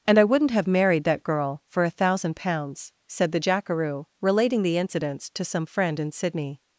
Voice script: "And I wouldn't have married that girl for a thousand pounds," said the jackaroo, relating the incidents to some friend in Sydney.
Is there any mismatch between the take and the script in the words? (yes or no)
no